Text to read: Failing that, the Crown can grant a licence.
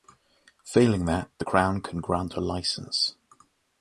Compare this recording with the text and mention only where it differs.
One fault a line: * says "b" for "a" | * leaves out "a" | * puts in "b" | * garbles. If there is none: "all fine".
all fine